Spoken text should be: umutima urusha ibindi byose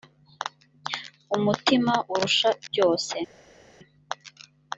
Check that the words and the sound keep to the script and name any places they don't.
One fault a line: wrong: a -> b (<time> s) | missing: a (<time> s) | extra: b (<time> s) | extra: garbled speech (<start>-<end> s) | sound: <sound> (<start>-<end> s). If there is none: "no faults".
missing: ibindi (2.5 s)